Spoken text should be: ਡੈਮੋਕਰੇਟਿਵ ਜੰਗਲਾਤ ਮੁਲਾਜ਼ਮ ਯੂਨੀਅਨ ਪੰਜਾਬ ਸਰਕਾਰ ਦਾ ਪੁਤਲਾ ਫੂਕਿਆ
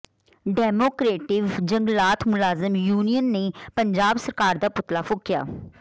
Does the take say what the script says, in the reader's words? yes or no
no